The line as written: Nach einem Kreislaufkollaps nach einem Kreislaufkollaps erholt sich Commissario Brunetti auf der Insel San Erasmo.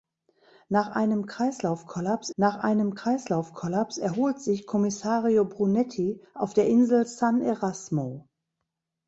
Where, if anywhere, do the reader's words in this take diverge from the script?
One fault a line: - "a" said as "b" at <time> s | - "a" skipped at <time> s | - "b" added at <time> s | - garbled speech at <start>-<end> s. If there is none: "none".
none